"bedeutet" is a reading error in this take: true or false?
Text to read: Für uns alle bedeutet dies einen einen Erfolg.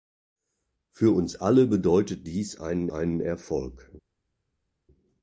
false